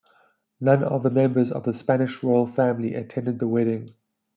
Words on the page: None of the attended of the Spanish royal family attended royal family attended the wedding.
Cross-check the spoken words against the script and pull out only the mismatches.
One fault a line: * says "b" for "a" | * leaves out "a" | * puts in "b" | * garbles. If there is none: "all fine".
* says "members" for "attended"
* leaves out "royal family attended"